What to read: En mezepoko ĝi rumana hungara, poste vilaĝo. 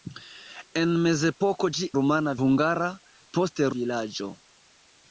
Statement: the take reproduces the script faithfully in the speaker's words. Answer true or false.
true